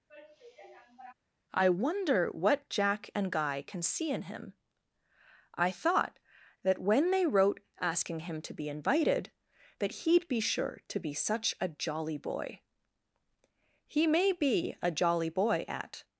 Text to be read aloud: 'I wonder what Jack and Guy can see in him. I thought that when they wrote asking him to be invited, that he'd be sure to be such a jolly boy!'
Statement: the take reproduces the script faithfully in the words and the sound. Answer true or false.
false